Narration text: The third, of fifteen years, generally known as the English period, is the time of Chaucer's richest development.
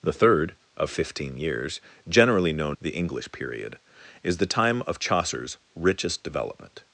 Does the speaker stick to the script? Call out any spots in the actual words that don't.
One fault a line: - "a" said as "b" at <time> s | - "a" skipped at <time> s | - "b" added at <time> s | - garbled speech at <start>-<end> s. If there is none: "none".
- "as" skipped at 2.8 s